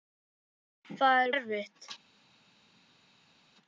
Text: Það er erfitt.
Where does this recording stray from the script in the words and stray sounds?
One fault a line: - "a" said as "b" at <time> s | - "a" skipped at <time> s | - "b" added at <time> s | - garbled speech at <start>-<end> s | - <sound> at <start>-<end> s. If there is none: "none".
none